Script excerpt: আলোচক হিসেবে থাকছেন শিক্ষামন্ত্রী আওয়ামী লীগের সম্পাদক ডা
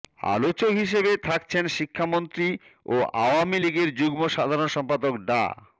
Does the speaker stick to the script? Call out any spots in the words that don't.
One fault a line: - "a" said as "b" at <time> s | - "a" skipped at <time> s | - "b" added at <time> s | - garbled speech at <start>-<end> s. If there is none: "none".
- "ও" added at 2.9 s
- "যুগ্ম সাধারণ" added at 4.0 s